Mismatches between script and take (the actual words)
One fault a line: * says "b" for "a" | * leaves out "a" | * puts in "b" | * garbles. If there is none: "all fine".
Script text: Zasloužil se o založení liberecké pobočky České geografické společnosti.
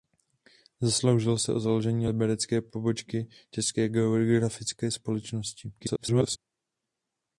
* garbles